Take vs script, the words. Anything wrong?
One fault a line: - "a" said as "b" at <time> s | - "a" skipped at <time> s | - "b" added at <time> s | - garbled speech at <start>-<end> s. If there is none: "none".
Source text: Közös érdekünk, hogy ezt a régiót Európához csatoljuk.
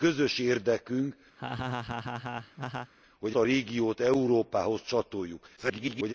- "ezt" skipped at 3.4 s
- garbled speech at 5.6-6.1 s